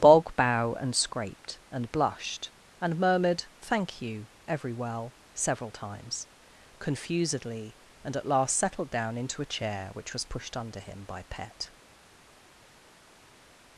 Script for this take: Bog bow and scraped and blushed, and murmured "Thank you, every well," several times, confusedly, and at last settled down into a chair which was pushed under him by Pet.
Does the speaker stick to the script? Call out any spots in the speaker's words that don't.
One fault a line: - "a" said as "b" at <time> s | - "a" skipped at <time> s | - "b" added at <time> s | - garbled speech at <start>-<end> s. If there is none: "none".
none